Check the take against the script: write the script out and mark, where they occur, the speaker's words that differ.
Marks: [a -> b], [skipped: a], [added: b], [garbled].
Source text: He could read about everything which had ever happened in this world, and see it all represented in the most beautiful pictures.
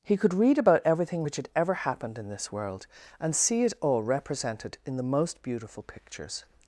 He could read about everything which had ever happened in this world, and see it all represented in the most beautiful pictures.